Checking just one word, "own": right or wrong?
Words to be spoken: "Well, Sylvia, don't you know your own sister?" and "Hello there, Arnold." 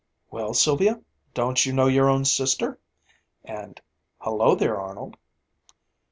right